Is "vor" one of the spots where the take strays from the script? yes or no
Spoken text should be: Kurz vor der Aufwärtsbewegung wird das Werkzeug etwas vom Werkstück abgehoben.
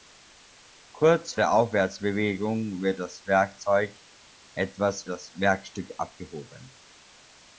yes